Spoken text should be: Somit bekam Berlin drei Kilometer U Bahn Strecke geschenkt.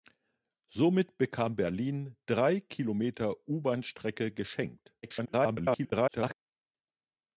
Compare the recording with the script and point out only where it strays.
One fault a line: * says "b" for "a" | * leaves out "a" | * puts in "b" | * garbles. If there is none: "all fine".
* garbles